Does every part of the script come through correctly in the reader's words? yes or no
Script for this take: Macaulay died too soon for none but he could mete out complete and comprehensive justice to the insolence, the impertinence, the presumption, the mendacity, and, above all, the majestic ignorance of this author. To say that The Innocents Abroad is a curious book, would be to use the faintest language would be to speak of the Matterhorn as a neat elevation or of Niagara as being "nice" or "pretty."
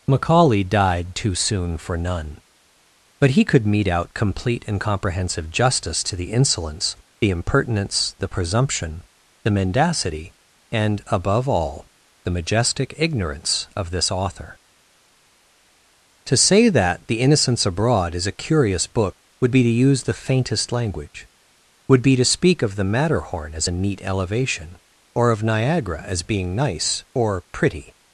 yes